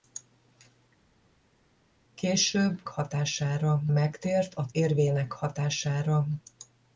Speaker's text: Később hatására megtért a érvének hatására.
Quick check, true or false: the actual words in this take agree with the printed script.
true